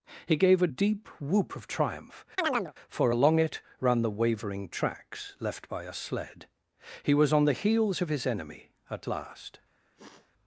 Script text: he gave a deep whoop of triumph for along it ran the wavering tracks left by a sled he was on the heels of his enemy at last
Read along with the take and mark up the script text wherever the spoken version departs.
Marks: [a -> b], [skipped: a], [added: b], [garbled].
he gave a deep whoop of triumph for along it ran the wavering tracks left by a sled he was on the heels of his enemy at last